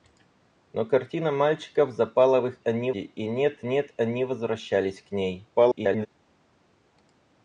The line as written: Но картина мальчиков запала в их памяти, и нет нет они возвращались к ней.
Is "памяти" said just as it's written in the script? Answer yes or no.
no